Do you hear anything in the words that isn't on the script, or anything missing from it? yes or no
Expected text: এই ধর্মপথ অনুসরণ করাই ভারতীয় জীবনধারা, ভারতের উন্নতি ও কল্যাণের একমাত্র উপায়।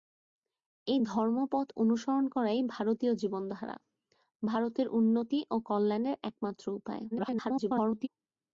yes